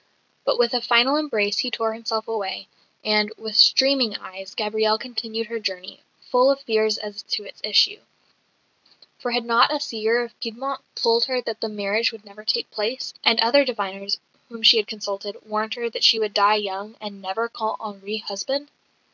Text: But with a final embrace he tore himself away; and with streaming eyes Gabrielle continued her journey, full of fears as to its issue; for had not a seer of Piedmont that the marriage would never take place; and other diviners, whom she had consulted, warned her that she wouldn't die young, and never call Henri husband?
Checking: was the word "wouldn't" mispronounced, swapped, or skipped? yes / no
yes